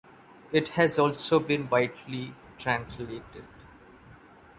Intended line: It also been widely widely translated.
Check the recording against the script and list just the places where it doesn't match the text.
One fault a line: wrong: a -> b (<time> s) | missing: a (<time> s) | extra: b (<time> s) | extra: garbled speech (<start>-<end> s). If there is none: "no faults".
extra: has (0.7 s)
missing: widely (2.3 s)